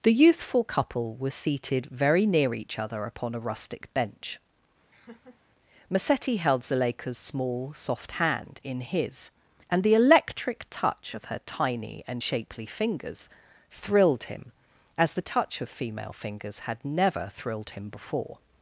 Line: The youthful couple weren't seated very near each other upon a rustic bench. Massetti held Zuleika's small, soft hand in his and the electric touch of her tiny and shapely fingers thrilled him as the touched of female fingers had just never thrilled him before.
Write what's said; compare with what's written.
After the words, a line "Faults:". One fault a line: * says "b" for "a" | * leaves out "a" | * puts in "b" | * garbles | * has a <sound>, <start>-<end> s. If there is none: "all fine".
The youthful couple were seated very near each other upon a rustic bench. Massetti held Zuleika's small, soft hand in his and the electric touch of her tiny and shapely fingers thrilled him as the touch of female fingers had never thrilled him before.
Faults:
* says "were" for "weren't"
* has a laugh, 4.9-5.4 s
* says "touch" for "touched"
* leaves out "just"